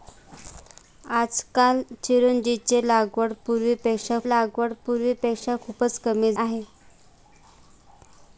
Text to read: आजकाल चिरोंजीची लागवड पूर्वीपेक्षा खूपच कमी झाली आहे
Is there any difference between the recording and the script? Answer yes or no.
yes